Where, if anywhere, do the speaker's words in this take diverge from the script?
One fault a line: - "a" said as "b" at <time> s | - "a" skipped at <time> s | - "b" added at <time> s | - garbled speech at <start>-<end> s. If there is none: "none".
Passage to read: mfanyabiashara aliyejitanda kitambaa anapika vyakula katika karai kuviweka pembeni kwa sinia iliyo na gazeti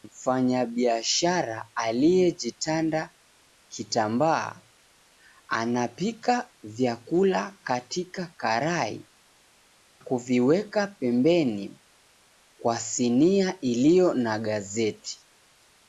none